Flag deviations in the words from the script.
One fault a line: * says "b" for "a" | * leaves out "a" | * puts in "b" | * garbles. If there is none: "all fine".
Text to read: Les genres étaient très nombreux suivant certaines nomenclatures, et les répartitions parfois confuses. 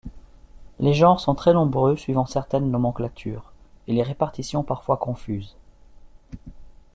* says "sont" for "étaient"